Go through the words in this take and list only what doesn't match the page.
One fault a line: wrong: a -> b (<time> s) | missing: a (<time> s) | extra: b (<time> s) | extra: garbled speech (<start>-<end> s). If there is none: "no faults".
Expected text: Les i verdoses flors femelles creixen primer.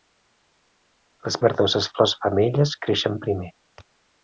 no faults